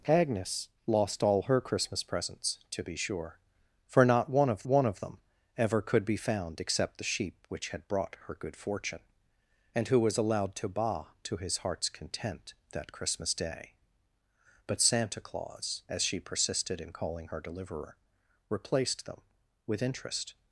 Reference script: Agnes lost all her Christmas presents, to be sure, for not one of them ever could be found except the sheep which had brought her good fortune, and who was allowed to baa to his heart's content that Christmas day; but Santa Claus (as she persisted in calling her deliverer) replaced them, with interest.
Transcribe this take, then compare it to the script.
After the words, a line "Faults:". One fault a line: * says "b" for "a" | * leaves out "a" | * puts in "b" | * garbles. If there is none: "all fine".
Agnes lost all her Christmas presents, to be sure, for not one of one of them ever could be found except the sheep which had brought her good fortune, and who was allowed to baa to his heart's content that Christmas day; but Santa Claus (as she persisted in calling her deliverer) replaced them, with interest.
Faults:
* puts in "one of"